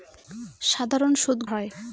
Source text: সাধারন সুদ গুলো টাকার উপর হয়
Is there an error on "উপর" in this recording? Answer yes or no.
yes